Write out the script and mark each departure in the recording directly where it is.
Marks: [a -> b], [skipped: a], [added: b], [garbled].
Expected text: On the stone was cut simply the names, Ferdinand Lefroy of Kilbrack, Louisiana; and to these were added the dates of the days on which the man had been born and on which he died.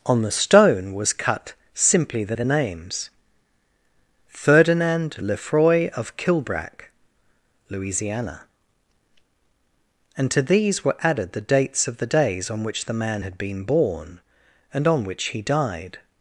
On the stone was cut simply the [added: the] names, Ferdinand Lefroy of Kilbrack, Louisiana; and to these were added the dates of the days on which the man had been born and on which he died.